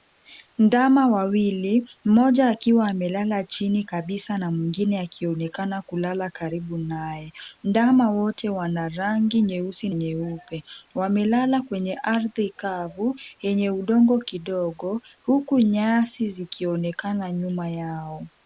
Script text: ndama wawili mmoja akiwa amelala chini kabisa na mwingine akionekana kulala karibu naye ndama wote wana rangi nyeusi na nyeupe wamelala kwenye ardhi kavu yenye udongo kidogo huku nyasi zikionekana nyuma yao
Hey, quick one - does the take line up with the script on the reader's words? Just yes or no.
no